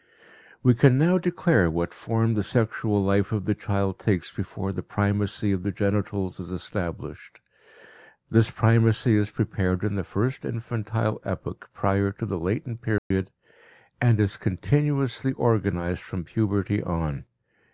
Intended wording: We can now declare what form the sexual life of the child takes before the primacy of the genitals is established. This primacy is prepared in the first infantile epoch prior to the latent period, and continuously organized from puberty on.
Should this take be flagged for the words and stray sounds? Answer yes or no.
yes